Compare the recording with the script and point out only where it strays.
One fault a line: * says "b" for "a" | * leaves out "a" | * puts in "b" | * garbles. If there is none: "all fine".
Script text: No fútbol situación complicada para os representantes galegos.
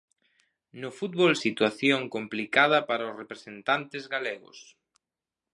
all fine